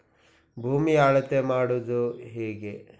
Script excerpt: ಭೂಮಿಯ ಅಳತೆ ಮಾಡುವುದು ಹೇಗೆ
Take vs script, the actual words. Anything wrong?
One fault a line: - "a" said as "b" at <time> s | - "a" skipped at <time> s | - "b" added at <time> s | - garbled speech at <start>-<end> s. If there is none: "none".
none